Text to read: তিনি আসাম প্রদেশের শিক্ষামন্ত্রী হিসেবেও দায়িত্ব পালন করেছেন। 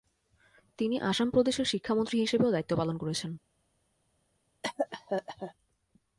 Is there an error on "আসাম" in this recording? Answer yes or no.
no